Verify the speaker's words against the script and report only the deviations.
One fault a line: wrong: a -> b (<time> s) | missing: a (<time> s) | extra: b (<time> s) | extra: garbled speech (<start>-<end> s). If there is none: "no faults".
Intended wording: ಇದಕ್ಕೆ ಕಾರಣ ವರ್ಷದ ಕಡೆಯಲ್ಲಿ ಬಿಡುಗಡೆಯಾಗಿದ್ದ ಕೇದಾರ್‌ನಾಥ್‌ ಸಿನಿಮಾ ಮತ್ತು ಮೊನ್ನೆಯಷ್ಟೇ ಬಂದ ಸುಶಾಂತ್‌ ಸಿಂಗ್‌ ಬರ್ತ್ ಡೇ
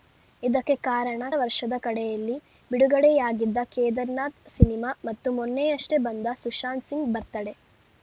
no faults